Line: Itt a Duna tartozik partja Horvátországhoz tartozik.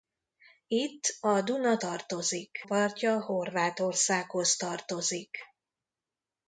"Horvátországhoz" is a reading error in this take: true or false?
false